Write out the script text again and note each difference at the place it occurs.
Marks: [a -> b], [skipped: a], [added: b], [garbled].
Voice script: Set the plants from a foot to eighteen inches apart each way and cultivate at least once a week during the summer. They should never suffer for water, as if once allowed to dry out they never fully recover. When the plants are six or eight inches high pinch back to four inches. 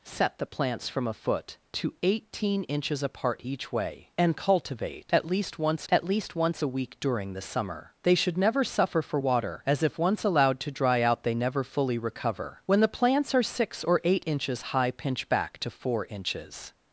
Set the plants from a foot to eighteen inches apart each way and cultivate at least once [added: at least once] a week during the summer. They should never suffer for water, as if once allowed to dry out they never fully recover. When the plants are six or eight inches high pinch back to four inches.